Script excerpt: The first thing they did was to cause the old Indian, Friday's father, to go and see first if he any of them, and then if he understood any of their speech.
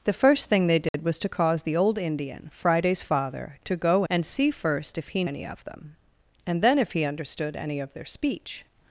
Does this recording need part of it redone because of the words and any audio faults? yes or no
yes